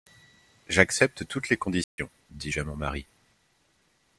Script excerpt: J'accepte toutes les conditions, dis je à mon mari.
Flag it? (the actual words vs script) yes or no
no